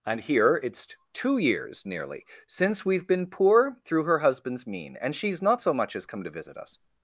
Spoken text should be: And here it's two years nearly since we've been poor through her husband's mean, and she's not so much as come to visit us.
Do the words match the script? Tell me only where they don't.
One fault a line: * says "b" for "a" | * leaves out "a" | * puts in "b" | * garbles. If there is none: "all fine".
all fine